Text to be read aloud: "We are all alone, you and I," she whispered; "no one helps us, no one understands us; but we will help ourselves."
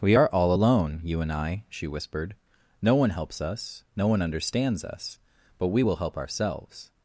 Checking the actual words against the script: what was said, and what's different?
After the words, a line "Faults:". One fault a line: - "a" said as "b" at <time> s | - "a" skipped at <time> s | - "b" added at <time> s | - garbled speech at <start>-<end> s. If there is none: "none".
"We are all alone, you and I," she whispered; "no one helps us, no one understands us; but we will help ourselves."
Faults:
none